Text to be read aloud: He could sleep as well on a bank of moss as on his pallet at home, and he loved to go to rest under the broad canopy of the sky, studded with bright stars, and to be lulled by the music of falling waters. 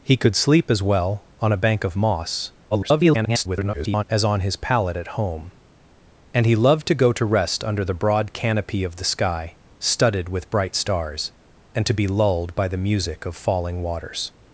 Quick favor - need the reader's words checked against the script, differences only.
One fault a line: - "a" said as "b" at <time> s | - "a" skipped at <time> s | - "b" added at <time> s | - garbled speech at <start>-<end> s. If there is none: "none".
- garbled speech at 2.7-4.0 s